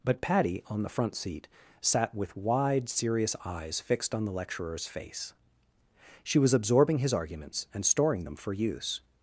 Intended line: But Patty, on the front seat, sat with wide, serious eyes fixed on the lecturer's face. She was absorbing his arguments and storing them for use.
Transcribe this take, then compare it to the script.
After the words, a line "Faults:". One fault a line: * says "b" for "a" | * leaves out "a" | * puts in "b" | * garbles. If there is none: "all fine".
But Patty, on the front seat, sat with wide, serious eyes fixed on the lecturer's face. She was absorbing his arguments and storing them for use.
Faults:
all fine